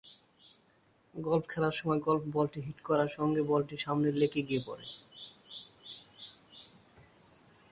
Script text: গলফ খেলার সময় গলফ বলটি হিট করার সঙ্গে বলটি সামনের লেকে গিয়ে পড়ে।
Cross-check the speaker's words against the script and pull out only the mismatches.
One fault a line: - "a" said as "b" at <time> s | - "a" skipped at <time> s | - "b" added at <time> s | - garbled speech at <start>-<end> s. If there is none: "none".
none